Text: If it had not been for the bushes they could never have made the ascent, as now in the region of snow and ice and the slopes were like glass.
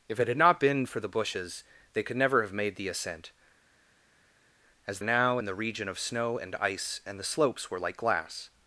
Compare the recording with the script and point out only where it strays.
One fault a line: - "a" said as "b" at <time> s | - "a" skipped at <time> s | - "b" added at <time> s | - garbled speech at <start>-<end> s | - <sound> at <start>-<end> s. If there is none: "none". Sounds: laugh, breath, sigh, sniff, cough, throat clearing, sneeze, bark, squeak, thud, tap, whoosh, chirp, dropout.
none